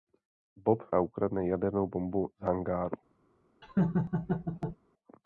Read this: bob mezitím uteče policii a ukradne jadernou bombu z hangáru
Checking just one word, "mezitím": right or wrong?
wrong